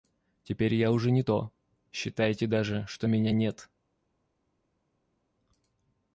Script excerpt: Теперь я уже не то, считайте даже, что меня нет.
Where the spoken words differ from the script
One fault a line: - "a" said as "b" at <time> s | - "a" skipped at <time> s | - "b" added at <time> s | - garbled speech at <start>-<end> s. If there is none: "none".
none